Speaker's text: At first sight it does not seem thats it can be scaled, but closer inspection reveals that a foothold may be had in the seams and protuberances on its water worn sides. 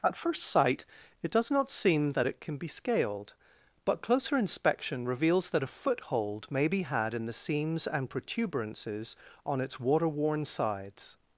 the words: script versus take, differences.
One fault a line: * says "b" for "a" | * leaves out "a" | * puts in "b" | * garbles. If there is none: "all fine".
* says "that" for "thats"